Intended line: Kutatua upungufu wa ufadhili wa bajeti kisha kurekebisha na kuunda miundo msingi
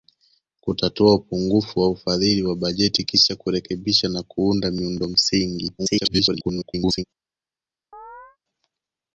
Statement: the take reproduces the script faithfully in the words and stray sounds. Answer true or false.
false